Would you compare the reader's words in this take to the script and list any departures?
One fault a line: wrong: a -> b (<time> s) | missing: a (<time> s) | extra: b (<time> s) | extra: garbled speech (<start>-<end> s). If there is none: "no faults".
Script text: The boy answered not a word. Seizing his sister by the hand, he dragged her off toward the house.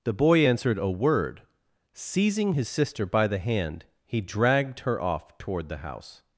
missing: not (0.8 s)